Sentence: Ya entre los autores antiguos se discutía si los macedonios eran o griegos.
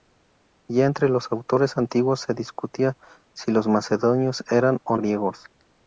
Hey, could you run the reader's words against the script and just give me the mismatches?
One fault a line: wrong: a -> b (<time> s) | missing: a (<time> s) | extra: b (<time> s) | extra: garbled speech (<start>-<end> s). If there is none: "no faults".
no faults